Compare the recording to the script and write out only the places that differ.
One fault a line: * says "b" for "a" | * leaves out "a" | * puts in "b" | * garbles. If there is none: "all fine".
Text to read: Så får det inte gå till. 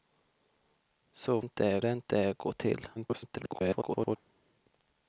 * says "inte" for "får"
* garbles